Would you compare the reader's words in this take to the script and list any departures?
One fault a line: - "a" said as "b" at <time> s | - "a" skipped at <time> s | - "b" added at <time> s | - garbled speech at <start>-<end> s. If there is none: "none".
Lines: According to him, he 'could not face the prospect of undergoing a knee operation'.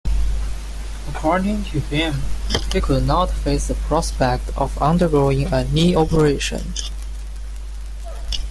none